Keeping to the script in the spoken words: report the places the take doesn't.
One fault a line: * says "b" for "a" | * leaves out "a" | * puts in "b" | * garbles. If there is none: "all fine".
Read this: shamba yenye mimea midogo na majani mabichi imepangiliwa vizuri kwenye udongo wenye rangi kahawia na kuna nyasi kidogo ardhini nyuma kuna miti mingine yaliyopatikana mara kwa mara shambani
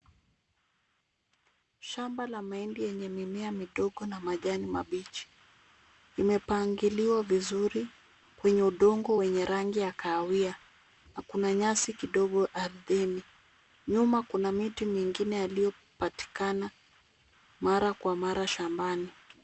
* puts in "la mahindi"
* puts in "ya"